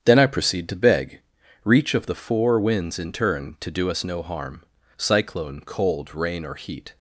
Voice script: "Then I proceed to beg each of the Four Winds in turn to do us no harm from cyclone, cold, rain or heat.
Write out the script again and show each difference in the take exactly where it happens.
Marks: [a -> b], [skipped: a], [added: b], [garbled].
"Then I proceed to beg [each -> reach] of the Four Winds in turn to do us no harm [skipped: from] cyclone, cold, rain or heat.